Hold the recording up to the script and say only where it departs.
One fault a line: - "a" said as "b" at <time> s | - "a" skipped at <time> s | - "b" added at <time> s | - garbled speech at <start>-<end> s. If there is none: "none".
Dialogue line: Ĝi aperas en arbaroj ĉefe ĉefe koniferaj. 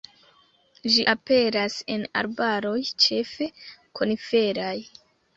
- "ĉefe" skipped at 3.5 s